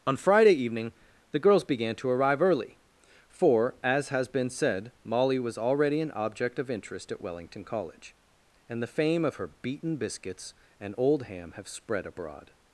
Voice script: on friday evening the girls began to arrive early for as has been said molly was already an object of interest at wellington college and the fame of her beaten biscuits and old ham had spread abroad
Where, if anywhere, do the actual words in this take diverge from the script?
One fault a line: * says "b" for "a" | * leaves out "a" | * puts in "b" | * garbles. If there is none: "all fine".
* says "have" for "had"